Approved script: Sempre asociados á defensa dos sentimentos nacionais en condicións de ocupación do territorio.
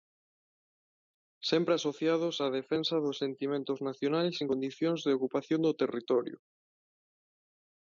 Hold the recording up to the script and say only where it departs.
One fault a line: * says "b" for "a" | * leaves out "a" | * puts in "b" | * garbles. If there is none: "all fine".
all fine